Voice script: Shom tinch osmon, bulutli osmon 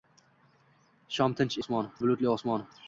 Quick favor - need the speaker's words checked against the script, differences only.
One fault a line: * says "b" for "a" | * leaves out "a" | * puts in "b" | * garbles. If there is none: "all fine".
all fine